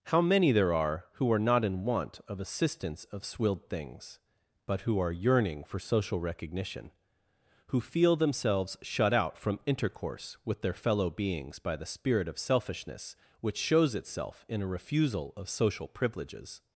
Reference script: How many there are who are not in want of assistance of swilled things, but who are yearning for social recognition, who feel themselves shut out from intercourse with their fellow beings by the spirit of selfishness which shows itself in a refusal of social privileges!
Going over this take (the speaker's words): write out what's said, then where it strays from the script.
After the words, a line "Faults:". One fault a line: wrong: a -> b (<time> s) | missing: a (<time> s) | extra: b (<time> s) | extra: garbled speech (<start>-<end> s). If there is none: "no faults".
How many there are who are not in want of assistance of swilled things, but who are yearning for social recognition, who feel themselves shut out from intercourse with their fellow beings by the spirit of selfishness which shows itself in a refusal of social privileges!
Faults:
no faults